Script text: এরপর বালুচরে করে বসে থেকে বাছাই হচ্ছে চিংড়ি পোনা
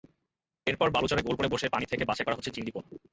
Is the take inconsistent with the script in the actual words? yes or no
yes